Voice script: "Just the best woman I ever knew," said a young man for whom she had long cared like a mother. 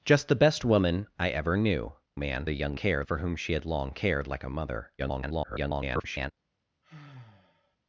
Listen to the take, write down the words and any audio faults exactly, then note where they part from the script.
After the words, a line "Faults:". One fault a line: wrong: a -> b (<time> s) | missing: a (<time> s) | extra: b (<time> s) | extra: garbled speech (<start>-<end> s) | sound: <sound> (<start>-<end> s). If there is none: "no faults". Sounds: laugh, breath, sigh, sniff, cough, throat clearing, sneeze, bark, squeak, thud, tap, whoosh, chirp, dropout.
"Just the best woman I ever knew," man a young cared for whom she had long cared like a mother. [garbled]
Faults:
wrong: said -> man (2.2 s)
wrong: man -> cared (2.7 s)
extra: garbled speech (5.0-6.3 s)
sound: sigh (6.8-7.8 s)